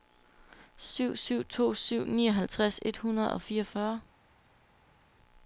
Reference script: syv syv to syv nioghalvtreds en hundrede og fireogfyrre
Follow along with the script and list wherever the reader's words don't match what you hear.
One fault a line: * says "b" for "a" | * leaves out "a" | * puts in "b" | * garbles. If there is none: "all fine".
* says "et" for "en"